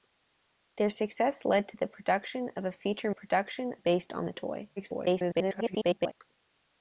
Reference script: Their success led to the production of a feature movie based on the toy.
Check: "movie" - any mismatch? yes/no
yes